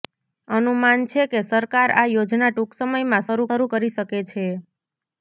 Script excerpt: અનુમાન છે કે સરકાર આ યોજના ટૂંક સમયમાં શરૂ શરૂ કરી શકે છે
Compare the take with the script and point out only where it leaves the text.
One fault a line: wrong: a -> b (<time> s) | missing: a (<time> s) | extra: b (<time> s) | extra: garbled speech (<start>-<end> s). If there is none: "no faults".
no faults